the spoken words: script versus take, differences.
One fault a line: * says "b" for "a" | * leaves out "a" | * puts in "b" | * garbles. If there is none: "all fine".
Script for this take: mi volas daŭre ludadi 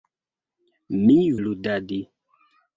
* leaves out "volas daŭre"